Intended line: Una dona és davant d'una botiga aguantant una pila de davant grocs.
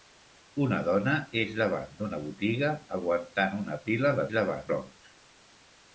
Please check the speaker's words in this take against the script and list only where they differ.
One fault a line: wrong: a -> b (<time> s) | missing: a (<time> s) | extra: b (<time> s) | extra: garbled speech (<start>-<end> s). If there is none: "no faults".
no faults